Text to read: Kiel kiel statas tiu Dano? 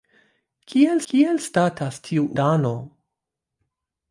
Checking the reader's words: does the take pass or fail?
pass